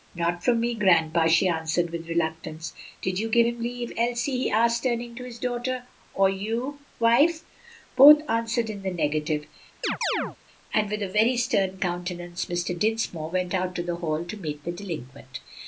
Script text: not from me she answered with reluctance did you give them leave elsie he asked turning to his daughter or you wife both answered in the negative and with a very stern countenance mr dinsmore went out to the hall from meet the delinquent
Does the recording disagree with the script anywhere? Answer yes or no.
yes